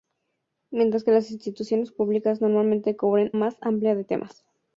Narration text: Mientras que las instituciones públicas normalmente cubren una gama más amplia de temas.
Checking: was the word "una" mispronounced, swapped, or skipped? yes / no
yes